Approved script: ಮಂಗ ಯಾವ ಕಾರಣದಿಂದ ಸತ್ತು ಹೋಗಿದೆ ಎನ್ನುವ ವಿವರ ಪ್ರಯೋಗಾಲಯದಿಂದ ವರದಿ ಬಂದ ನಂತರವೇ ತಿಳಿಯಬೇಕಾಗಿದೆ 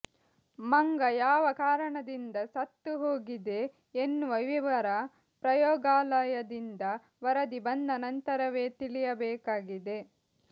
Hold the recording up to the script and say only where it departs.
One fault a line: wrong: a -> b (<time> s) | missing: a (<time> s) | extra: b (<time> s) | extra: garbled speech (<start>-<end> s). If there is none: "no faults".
no faults